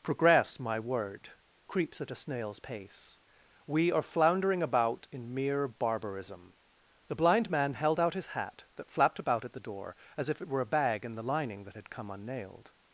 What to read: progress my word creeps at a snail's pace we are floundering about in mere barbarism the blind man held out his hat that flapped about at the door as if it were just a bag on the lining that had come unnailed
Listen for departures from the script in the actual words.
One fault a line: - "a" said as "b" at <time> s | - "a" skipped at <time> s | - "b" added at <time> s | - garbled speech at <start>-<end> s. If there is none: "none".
- "just" skipped at 10.6 s
- "on" said as "in" at 11.0 s